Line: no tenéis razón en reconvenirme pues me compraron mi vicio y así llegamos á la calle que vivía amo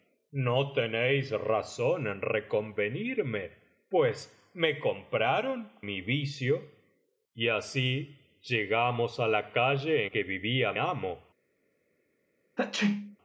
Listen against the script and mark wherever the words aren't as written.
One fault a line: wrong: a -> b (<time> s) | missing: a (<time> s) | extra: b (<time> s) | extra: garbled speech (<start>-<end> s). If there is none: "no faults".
no faults